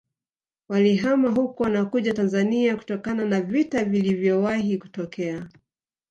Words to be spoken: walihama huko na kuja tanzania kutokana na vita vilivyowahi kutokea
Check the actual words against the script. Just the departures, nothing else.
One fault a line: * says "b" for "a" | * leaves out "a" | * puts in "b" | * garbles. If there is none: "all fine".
all fine